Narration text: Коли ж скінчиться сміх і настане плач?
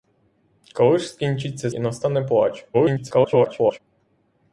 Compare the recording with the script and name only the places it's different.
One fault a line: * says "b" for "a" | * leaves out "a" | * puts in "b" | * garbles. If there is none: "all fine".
* leaves out "сміх"
* garbles